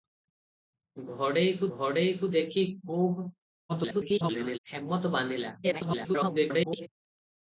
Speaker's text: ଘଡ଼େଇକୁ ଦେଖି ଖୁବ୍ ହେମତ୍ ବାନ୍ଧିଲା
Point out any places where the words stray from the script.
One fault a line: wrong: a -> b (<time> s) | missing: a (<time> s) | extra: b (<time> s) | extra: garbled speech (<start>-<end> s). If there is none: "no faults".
extra: ଘଡ଼େଇକୁ (1.8 s)
extra: garbled speech (3.7-4.6 s)
extra: garbled speech (5.6-6.9 s)